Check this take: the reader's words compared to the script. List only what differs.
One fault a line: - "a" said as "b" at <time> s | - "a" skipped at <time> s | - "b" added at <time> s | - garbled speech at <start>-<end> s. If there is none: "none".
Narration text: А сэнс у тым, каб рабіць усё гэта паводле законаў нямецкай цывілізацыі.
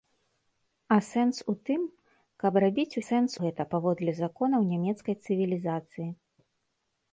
- "усё" said as "сэнс" at 3.0 s